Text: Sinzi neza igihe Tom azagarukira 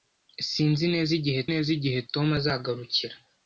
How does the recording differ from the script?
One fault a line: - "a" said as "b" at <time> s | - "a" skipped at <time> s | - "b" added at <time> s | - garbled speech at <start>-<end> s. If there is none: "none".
- "neza igihe" added at 1.5 s